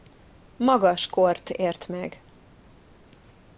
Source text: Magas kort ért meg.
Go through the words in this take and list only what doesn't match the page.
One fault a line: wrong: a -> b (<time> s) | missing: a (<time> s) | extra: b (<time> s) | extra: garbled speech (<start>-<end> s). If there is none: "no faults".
no faults